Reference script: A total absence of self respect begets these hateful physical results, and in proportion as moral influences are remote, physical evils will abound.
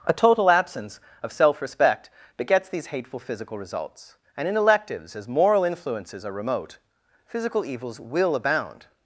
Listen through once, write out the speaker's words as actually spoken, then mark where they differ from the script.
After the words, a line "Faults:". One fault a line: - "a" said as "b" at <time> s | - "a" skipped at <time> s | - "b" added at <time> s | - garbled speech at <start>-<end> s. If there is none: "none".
A total absence of self respect begets these hateful physical results, and in electives as moral influences are remote, physical evils will abound.
Faults:
- "proportion" said as "electives" at 4.6 s